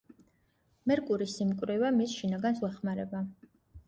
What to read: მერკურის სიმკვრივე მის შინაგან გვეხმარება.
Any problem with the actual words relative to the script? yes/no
no